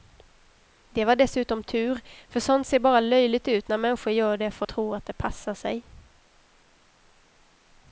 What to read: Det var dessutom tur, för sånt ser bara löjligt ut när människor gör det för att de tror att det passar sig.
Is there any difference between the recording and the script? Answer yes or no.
yes